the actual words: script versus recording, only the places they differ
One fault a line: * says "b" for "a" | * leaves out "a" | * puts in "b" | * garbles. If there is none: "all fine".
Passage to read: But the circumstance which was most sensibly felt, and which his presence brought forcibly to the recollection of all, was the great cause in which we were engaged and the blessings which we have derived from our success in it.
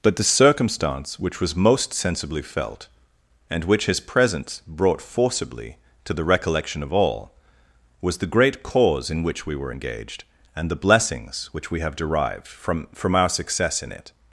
* puts in "from"